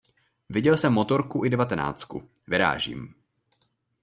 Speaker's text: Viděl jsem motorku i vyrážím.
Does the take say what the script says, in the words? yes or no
no